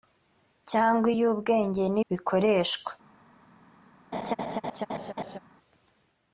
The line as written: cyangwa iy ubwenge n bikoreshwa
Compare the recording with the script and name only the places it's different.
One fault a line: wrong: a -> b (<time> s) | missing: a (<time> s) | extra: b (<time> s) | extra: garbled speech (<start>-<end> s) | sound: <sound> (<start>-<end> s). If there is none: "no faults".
sound: laugh (4.1-5.4 s)